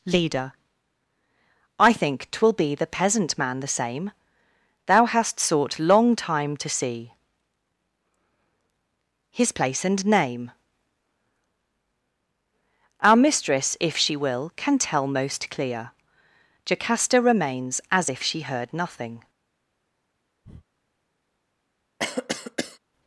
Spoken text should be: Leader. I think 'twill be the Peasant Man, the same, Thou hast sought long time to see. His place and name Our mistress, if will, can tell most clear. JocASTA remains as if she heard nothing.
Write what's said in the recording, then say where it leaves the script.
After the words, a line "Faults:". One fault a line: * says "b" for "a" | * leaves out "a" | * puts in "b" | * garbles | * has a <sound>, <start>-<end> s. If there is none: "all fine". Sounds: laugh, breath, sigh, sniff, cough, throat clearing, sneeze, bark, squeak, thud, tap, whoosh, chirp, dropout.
Leader. I think 'twill be the Peasant Man, the same, Thou hast sought long time to see. His place and name Our mistress, if she will, can tell most clear. JocASTA remains as if she heard nothing.
Faults:
* puts in "she"
* has a breath, 20.4-20.7 s
* has a cough, 22.0-22.8 s